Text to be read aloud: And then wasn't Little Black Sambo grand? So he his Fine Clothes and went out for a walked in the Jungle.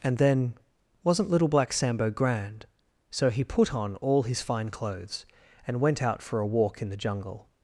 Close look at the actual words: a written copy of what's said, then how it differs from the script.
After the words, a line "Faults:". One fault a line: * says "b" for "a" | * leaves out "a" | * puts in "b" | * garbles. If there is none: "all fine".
And then wasn't Little Black Sambo grand? So he put on all his Fine Clothes and went out for a walk in the Jungle.
Faults:
* puts in "put on all"
* says "walk" for "walked"